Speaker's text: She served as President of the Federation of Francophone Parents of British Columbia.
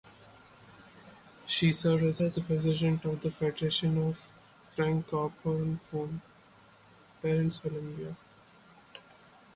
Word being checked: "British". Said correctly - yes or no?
no